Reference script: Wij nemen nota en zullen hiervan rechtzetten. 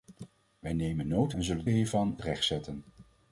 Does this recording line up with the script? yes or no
yes